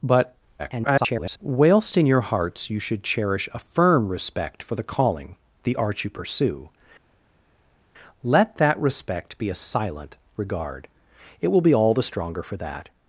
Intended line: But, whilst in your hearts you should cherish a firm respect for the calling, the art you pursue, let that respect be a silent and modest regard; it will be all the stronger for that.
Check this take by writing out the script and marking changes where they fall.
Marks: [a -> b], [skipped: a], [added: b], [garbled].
But, [garbled] whilst in your hearts you should cherish a firm respect for the calling, the art you pursue, let that respect be a silent [skipped: and modest] regard; it will be all the stronger for that.